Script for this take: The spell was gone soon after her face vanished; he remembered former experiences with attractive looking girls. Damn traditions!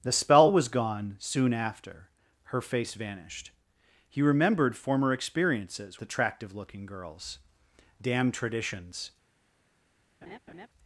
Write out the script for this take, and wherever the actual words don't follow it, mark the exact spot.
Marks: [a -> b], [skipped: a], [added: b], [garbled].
The spell was gone soon after her face vanished; he remembered former experiences [skipped: with] attractive looking girls. Damn traditions!